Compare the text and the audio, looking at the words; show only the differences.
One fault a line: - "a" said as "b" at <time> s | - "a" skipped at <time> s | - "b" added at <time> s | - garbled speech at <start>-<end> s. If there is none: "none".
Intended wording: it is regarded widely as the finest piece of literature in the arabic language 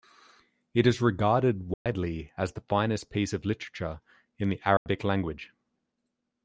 none